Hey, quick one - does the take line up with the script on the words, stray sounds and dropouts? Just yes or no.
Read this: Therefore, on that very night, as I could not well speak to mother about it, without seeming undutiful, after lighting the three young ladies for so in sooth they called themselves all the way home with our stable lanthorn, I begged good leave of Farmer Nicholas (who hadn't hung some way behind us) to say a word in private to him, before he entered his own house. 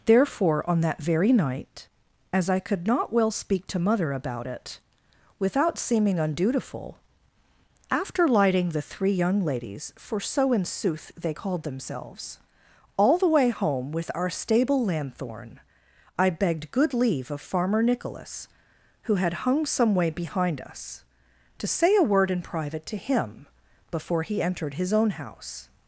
no